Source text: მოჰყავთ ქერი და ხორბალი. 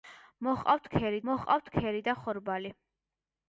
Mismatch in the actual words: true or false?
true